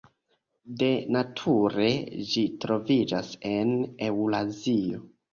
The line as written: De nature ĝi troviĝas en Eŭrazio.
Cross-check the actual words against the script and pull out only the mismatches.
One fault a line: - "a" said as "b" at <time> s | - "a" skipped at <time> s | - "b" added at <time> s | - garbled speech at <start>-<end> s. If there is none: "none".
none